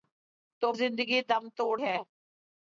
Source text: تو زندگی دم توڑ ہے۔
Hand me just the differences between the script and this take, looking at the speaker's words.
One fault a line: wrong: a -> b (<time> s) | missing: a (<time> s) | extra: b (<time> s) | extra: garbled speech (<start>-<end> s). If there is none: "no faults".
no faults